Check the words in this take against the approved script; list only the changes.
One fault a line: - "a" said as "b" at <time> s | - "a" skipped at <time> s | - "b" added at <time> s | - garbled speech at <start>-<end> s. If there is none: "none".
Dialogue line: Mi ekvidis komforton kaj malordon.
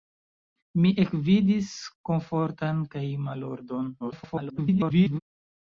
- garbled speech at 4.0-5.2 s